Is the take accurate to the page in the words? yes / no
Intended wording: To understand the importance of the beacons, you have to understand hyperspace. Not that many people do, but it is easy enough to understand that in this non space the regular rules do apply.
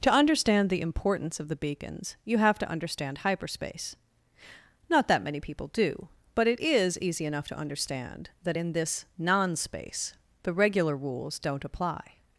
no